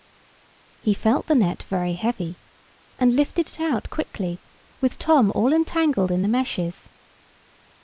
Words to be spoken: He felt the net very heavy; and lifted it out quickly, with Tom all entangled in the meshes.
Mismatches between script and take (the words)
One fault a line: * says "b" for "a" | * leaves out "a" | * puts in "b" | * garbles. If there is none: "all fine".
all fine